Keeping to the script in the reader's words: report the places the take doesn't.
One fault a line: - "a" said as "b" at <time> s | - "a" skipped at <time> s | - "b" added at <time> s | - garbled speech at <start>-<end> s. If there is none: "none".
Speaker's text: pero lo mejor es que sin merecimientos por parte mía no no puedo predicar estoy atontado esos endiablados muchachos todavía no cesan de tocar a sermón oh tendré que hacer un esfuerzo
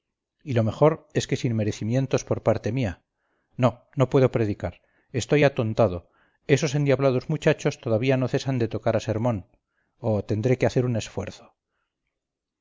- "pero" said as "y" at 0.4 s